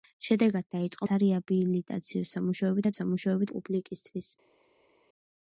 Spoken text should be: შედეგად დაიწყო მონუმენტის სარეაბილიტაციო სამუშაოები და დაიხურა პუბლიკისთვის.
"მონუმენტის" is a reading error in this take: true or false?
true